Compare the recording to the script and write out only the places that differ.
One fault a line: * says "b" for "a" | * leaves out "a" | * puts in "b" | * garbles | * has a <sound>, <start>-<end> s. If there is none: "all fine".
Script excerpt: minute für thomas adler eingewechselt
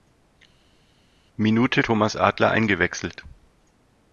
* leaves out "für"